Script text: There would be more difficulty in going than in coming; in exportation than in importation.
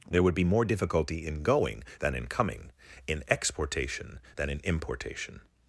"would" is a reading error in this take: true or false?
false